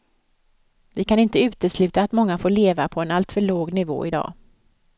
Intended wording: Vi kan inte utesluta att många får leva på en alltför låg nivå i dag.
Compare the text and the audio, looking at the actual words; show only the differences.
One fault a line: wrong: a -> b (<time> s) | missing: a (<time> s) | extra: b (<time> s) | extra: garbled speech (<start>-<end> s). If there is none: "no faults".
no faults